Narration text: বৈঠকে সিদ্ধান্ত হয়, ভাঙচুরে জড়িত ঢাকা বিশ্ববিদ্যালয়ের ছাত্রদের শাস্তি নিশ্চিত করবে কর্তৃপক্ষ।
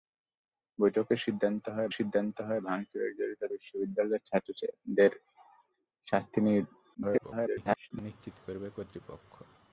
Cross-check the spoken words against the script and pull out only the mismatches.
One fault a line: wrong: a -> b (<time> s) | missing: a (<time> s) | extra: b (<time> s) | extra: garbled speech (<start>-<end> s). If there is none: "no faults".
extra: সিদ্ধান্ত হয় (1.9 s)
missing: ঢাকা (3.4 s)
extra: garbled speech (6.9-7.9 s)